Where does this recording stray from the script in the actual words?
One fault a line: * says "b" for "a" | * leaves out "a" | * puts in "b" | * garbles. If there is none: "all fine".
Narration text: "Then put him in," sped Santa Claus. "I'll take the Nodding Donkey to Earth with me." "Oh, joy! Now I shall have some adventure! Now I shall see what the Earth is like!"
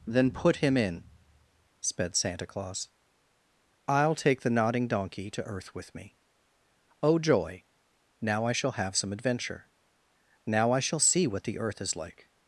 all fine